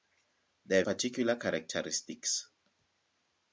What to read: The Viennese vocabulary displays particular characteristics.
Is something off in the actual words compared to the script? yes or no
yes